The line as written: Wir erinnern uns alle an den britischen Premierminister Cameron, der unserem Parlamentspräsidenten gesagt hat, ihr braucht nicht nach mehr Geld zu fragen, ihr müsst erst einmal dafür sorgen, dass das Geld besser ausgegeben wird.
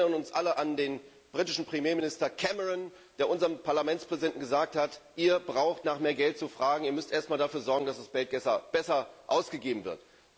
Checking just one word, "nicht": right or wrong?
wrong